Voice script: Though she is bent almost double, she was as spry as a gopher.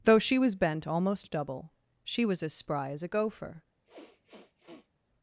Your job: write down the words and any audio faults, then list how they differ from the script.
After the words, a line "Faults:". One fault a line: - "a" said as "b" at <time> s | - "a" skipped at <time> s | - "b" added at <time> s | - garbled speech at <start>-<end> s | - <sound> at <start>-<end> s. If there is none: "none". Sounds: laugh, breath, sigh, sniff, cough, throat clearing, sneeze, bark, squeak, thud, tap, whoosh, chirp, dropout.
Though she was bent almost double, she was as spry as a gopher.
Faults:
- "is" said as "was" at 0.4 s
- sniff at 3.8-4.9 s